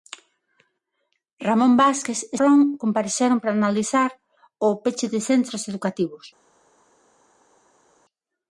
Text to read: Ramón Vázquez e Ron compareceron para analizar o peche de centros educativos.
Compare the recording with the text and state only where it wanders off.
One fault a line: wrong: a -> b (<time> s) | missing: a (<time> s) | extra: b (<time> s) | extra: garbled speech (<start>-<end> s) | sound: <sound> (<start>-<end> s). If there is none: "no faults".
no faults